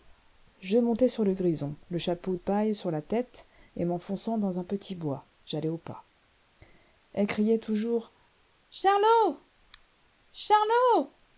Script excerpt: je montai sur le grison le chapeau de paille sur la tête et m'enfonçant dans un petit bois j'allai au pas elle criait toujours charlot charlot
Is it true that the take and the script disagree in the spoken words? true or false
true